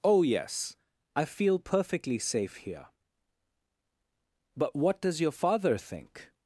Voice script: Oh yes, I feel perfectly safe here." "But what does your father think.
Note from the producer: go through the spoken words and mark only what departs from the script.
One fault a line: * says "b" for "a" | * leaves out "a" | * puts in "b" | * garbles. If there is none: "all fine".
all fine